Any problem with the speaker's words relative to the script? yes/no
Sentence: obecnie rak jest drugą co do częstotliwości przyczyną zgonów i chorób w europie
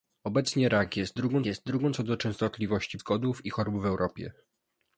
yes